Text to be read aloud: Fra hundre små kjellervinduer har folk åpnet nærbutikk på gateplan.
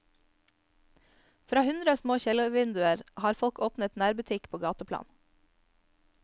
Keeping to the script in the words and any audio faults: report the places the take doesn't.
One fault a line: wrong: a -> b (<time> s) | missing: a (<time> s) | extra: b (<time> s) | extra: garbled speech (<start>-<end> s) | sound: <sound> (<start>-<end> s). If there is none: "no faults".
no faults